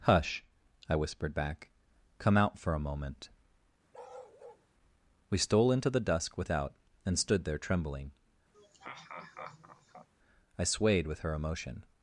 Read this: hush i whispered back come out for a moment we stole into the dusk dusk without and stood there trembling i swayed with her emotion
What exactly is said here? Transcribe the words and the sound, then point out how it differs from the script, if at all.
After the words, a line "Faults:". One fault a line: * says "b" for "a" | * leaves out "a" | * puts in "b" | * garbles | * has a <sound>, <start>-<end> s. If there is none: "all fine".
hush i whispered back come out for a moment we stole into the dusk without and stood there trembling i swayed with her emotion
Faults:
* has a bark, 3.9-4.7 s
* leaves out "dusk"
* has a laugh, 8.5-10.1 s